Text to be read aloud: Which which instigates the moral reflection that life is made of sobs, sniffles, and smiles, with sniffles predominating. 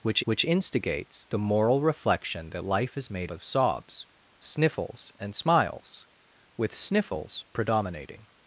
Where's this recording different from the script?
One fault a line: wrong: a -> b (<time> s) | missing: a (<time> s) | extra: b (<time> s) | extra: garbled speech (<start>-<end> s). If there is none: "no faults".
no faults